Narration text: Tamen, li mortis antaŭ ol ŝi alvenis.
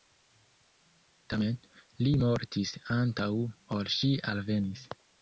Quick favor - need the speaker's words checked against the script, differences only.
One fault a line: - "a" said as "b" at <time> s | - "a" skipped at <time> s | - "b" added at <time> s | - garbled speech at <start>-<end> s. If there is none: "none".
none